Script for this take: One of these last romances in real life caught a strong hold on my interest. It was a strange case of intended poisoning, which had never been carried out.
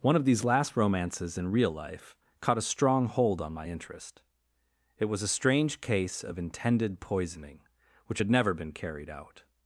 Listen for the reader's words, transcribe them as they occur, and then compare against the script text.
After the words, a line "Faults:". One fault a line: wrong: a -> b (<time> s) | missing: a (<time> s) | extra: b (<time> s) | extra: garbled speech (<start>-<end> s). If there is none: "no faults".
One of these last romances in real life caught a strong hold on my interest. It was a strange case of intended poisoning, which had never been carried out.
Faults:
no faults